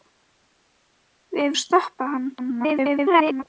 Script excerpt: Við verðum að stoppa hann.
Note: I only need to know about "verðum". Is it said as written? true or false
false